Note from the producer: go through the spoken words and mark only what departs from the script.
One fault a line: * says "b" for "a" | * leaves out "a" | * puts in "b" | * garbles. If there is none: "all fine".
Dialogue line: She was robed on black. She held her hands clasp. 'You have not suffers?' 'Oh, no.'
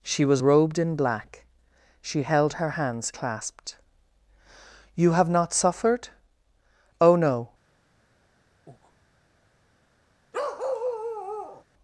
* says "in" for "on"
* says "clasped" for "clasp"
* says "suffered" for "suffers"